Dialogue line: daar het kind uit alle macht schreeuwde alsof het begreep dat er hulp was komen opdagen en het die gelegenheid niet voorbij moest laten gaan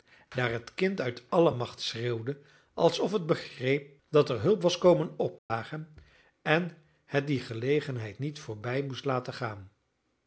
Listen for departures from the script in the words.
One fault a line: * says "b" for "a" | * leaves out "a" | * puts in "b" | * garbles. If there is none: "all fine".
all fine